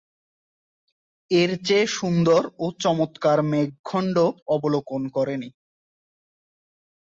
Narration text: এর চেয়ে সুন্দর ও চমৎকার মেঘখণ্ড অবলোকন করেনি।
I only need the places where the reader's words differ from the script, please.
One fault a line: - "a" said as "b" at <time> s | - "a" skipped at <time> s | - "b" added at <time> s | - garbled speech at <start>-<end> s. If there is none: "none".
none